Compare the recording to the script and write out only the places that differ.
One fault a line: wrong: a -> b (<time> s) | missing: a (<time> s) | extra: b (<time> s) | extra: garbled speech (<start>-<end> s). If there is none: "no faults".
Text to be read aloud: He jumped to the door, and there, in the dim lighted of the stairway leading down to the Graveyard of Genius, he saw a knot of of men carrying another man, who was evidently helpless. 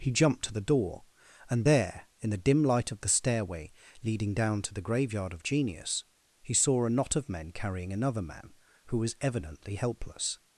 wrong: lighted -> light (2.6 s)
missing: of (7.3 s)